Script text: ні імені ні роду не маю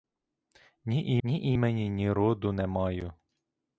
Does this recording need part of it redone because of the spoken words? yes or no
yes